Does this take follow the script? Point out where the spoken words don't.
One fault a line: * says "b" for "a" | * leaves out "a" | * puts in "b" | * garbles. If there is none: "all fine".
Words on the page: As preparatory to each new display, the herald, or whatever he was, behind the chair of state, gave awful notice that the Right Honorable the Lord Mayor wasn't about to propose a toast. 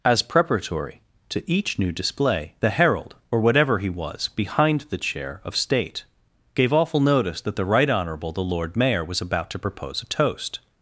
* says "was" for "wasn't"